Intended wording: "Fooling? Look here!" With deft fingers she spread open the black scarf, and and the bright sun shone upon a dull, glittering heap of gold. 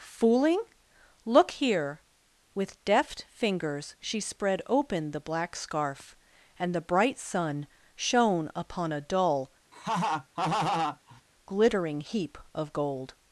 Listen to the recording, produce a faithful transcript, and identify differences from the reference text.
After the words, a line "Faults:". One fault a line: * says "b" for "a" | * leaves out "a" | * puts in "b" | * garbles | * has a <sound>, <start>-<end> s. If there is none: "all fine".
"Fooling? Look here!" With deft fingers she spread open the black scarf, and the bright sun shone upon a dull, glittering heap of gold.
Faults:
* leaves out "and"
* has a laugh, 9.7-11.2 s